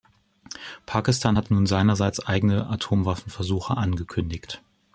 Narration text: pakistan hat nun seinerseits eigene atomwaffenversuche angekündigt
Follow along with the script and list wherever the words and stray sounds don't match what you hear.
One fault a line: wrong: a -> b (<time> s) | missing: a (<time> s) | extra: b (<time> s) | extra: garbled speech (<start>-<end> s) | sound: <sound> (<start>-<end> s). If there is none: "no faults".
no faults